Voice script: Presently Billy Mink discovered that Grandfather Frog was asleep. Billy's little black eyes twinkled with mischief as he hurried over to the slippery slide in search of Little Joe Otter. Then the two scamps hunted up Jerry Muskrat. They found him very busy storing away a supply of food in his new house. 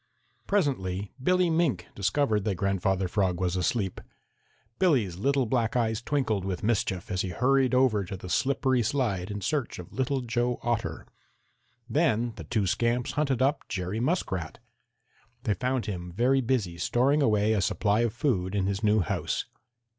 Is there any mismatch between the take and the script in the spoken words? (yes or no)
no